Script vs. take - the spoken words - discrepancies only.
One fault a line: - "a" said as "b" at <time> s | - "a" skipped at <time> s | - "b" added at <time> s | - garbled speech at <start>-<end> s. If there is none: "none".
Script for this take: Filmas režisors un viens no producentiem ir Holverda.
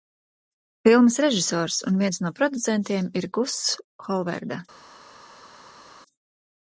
- "Guss" added at 3.4 s